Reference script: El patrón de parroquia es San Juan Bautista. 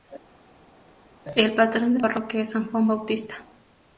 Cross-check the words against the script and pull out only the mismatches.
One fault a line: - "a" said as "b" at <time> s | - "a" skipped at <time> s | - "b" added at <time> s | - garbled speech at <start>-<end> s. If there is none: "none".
none